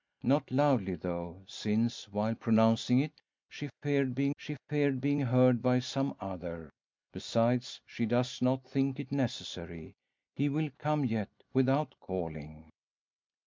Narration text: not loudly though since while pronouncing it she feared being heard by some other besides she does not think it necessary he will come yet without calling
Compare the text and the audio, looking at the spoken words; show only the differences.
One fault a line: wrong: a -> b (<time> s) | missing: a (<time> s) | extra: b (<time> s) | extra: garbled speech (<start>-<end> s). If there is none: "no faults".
extra: she feared being (4.3 s)